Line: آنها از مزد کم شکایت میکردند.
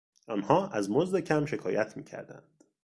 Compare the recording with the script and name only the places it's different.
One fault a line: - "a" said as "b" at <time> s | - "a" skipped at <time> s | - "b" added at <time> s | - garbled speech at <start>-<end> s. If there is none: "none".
none